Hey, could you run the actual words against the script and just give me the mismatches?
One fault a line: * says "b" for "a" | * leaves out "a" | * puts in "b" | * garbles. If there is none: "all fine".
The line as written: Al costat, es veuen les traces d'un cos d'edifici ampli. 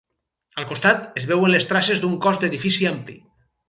all fine